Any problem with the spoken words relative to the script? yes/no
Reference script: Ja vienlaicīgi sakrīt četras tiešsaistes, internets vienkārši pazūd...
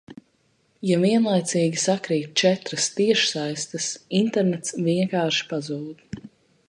no